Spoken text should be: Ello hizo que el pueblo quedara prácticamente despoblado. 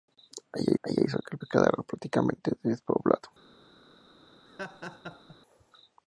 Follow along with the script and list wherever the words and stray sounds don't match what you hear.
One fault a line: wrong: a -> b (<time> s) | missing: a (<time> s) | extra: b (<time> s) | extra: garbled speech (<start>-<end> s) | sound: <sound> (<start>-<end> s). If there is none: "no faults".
extra: ello (0.8 s)
missing: pueblo (1.4 s)
sound: laugh (4.5-5.4 s)